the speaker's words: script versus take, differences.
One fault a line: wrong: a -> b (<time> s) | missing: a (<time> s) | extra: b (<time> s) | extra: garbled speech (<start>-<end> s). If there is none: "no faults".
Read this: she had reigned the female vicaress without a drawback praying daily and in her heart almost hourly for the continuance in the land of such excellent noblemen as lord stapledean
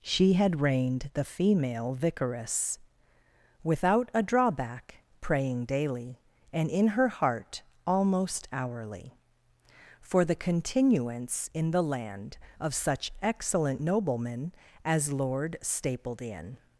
no faults